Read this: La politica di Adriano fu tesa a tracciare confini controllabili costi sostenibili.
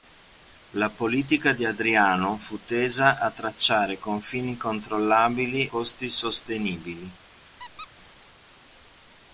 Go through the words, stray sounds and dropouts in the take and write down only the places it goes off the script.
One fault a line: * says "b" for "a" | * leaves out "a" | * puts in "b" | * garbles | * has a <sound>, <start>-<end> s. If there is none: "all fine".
* has a squeak, 7.6-7.9 s